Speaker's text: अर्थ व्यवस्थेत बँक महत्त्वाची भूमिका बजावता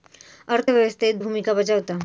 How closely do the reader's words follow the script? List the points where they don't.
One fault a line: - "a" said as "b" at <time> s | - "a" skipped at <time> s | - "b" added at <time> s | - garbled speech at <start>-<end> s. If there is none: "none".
- "बँक महत्त्वाची" skipped at 1.2 s